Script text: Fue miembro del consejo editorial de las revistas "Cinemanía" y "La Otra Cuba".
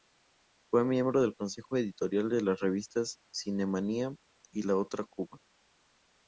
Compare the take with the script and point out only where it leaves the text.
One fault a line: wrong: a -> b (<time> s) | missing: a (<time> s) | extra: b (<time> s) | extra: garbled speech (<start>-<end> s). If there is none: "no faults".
no faults